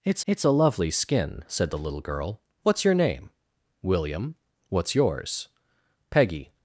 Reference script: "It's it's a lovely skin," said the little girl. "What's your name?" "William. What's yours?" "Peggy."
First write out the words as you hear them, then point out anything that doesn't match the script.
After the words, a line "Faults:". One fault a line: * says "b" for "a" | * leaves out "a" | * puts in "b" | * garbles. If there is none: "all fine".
"It's it's a lovely skin," said the little girl. "What's your name?" "William. What's yours?" "Peggy."
Faults:
all fine